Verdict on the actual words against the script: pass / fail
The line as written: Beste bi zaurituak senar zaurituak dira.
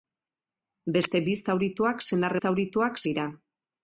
pass